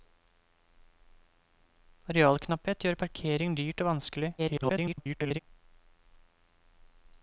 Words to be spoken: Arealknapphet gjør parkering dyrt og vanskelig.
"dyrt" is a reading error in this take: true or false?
false